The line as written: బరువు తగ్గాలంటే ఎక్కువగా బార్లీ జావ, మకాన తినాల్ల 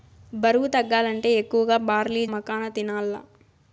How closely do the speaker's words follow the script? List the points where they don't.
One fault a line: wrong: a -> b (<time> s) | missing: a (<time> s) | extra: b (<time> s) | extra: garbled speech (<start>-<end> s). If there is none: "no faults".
missing: జావ (2.2 s)